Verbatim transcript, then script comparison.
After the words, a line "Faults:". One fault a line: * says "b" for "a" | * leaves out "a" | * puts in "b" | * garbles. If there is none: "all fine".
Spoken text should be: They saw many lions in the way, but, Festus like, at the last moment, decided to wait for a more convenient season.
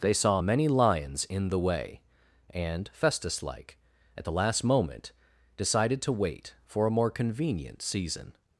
They saw many lions in the way, and, Festus like, at the last moment, decided to wait for a more convenient season.
Faults:
* says "and" for "but"